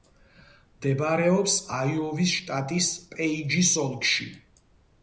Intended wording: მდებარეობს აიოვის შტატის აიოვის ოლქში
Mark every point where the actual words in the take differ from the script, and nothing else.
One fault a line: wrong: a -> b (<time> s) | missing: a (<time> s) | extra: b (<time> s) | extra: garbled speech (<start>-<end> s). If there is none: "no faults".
wrong: აიოვის -> პეიჯის (3.2 s)